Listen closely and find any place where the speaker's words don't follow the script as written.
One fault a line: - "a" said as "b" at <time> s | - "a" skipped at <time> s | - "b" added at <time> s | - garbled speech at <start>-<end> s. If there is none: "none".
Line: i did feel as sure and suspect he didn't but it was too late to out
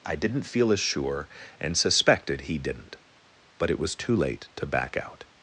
- "did" said as "didn't" at 0.1 s
- "suspect" said as "suspected" at 1.8 s
- "back" added at 4.6 s